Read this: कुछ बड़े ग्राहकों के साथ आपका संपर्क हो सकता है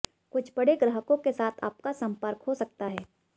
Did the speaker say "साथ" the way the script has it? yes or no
yes